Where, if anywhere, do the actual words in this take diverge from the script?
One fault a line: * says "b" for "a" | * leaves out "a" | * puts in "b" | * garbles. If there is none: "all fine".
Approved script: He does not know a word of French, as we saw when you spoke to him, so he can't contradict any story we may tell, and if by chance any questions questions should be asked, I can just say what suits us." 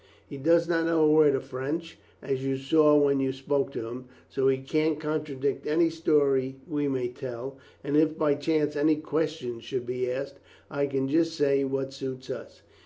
* says "you" for "we"
* leaves out "questions"